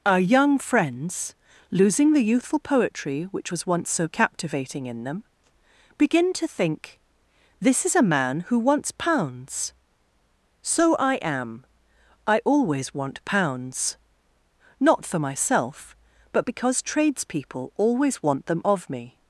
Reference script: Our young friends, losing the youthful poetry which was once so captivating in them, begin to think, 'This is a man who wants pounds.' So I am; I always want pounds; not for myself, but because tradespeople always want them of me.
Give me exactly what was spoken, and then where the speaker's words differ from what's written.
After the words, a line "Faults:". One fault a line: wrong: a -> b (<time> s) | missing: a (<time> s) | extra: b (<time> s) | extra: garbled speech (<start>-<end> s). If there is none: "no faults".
Our young friends, losing the youthful poetry which was once so captivating in them, begin to think, 'This is a man who wants pounds.' So I am; I always want pounds; not for myself, but because tradespeople always want them of me.
Faults:
no faults